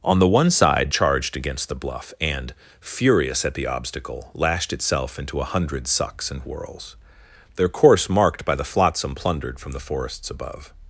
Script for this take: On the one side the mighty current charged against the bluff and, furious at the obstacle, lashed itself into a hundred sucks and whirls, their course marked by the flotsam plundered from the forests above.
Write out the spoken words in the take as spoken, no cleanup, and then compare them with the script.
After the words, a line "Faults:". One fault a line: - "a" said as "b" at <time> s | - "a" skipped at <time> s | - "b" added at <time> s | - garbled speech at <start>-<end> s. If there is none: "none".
On the one side charged against the bluff and, furious at the obstacle, lashed itself into a hundred sucks and whirls, their course marked by the flotsam plundered from the forests above.
Faults:
- "the mighty current" skipped at 0.9 s